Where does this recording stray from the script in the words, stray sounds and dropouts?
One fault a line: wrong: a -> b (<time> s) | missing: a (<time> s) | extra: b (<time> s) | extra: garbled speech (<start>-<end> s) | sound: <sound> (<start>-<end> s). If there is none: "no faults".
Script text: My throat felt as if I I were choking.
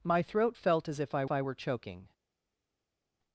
no faults